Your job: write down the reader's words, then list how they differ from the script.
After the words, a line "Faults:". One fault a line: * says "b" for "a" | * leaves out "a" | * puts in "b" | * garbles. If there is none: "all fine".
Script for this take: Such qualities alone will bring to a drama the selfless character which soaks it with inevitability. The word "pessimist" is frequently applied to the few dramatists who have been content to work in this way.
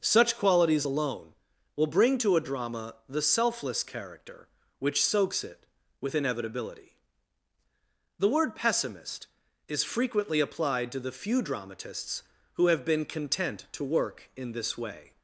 Such qualities alone will bring to a drama the selfless character which soaks it with inevitability. The word "pessimist" is frequently applied to the few dramatists who have been content to work in this way.
Faults:
all fine